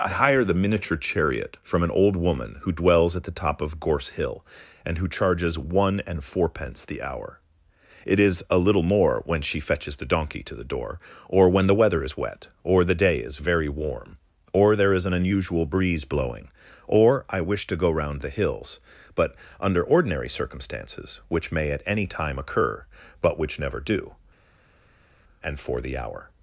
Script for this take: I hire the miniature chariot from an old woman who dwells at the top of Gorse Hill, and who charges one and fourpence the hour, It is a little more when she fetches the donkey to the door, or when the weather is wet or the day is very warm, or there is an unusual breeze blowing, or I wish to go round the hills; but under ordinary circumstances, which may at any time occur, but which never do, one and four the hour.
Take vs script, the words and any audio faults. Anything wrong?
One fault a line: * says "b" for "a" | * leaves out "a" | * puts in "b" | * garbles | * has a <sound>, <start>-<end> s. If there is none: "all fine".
* leaves out "one"